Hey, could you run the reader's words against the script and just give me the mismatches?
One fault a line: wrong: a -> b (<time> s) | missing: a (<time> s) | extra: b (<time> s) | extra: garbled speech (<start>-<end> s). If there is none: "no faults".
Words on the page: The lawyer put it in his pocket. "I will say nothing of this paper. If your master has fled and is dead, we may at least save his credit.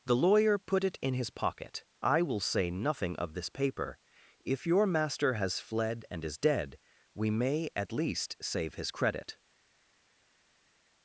no faults